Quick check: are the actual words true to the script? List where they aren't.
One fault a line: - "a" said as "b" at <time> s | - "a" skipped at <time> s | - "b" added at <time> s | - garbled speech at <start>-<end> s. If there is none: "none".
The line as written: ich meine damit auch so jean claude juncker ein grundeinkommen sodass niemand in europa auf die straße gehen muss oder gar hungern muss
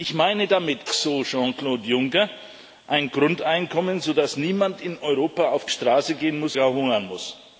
- "auch" skipped at 0.9 s
- "die" skipped at 5.7 s
- "oder" skipped at 6.6 s